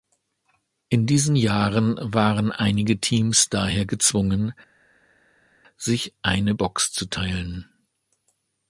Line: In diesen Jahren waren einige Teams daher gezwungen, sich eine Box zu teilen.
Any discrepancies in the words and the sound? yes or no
no